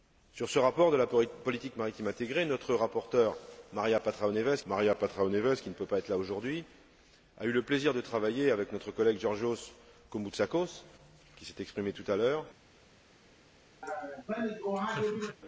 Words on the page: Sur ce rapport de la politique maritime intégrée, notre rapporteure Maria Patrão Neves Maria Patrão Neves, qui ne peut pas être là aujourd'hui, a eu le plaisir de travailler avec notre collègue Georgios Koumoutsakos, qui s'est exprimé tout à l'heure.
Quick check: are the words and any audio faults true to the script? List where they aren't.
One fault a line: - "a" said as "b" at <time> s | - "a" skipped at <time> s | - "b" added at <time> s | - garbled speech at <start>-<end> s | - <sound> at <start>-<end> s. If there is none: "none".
- laugh at 13.8-15.4 s